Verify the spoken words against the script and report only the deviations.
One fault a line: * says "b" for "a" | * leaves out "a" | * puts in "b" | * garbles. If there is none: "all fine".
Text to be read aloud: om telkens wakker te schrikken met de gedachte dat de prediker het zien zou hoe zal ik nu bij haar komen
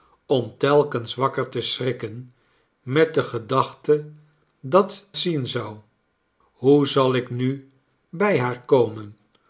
* leaves out "de prediker het"